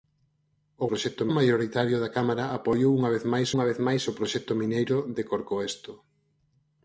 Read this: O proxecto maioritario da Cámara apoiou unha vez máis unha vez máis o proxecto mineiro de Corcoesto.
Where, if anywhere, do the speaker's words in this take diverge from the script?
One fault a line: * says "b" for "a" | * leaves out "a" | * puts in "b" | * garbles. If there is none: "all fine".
all fine